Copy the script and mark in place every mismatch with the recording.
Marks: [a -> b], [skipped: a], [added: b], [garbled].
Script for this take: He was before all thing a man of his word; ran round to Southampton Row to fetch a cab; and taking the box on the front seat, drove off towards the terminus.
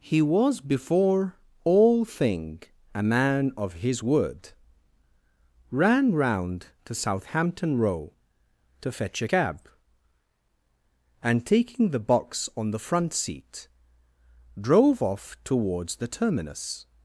He was before all thing a man of his word; ran round to Southampton Row to fetch a cab; and taking the box on the front seat, drove off towards the terminus.